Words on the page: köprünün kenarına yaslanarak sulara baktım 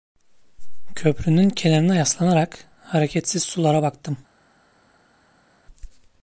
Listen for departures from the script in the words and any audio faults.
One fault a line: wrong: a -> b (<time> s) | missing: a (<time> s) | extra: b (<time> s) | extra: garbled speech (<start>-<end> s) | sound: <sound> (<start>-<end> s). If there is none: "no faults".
extra: hareketsiz (2.8 s)